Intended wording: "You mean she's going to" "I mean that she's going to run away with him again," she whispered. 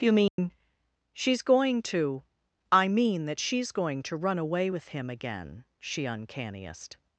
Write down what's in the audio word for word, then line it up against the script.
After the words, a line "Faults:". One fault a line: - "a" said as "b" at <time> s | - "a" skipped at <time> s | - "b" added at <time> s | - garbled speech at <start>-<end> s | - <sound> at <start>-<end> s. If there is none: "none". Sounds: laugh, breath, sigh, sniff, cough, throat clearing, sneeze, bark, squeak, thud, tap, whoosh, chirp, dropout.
"You mean she's going to" "I mean that she's going to run away with him again," she uncanniest.
Faults:
- dropout at 0.3-0.4 s
- "whispered" said as "uncanniest" at 6.1 s